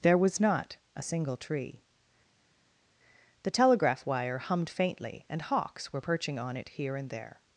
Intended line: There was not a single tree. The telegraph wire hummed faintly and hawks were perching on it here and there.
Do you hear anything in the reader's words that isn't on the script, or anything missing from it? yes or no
no